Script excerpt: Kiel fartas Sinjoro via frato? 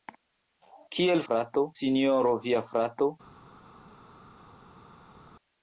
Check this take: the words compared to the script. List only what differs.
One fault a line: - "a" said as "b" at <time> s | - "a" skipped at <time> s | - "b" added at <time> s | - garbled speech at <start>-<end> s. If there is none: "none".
- "fartas" said as "frato" at 1.3 s